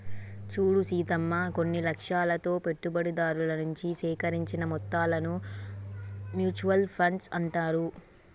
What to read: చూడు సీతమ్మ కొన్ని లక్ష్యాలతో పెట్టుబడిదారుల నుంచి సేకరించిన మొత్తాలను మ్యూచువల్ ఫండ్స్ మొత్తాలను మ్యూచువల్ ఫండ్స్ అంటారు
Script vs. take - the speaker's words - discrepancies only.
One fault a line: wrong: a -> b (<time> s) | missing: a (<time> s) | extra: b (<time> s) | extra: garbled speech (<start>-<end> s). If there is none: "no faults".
missing: మొత్తాలను మ్యూచువల్ ఫండ్స్ (7.3 s)